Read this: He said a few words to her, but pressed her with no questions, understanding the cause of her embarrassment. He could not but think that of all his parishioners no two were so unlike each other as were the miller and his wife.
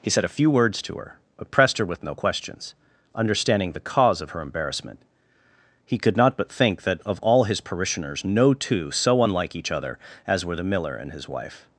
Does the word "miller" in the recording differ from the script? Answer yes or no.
no